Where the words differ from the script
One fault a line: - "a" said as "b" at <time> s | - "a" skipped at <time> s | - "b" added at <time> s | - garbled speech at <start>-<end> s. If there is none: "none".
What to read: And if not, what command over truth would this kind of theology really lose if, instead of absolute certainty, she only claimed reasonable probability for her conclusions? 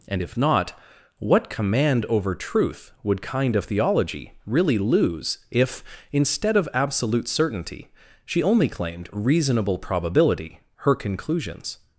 - "this" skipped at 3.2 s
- "for" skipped at 10.6 s